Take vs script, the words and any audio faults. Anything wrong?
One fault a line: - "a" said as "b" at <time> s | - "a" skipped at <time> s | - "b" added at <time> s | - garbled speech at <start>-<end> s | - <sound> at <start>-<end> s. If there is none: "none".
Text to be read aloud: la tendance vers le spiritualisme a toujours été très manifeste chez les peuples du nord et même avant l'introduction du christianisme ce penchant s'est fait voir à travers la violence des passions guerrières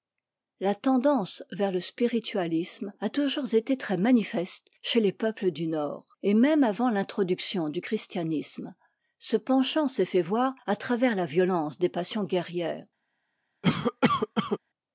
- cough at 13.6-14.6 s